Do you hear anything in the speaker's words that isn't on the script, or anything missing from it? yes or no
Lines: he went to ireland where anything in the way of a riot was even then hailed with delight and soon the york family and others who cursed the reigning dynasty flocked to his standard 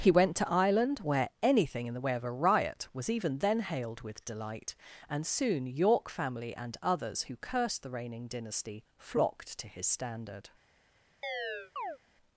yes